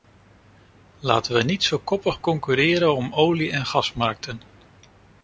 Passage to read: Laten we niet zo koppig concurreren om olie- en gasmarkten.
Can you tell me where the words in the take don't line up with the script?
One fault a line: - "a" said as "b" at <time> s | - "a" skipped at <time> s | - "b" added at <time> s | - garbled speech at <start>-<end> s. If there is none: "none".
none